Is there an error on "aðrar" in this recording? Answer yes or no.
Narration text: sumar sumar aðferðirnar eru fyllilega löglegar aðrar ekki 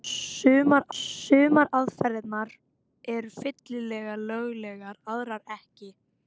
no